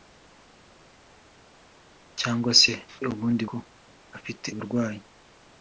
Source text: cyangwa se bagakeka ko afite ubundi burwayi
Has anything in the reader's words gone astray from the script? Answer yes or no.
yes